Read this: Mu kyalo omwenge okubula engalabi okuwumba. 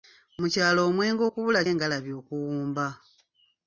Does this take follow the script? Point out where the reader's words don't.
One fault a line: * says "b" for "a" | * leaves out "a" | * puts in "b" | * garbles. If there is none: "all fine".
all fine